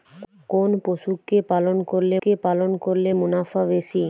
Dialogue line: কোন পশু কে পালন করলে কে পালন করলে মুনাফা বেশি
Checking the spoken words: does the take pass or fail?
pass